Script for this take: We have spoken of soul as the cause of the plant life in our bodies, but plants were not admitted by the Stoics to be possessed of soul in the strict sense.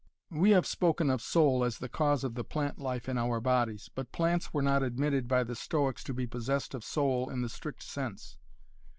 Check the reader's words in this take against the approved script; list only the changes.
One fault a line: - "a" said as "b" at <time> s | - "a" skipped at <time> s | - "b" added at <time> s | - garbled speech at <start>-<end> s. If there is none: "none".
none